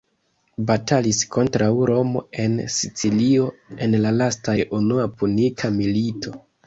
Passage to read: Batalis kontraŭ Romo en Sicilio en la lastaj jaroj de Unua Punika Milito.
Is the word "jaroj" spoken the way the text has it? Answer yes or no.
no